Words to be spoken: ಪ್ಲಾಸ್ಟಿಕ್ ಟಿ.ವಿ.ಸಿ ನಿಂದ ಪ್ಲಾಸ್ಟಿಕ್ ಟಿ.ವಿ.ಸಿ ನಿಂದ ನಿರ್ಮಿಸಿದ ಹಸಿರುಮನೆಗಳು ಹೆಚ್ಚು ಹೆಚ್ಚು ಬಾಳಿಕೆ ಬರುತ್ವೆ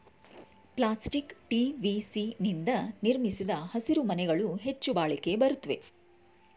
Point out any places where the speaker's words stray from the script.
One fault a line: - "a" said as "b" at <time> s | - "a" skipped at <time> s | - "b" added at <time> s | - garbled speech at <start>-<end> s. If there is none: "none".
- "ಪ್ಲಾಸ್ಟಿಕ್ ಟಿ.ವಿ.ಸಿ ನಿಂದ" skipped at 2.7 s
- "ಹೆಚ್ಚು" skipped at 4.9 s